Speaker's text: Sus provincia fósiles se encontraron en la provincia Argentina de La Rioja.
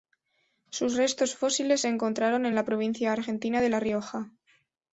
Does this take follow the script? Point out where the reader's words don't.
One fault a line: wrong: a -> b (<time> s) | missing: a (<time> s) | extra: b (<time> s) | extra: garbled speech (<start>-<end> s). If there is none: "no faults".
wrong: provincia -> restos (1.0 s)